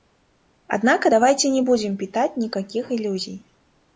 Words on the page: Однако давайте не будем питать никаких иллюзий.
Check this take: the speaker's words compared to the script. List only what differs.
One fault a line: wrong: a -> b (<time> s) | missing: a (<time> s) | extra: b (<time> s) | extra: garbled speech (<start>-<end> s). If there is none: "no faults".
no faults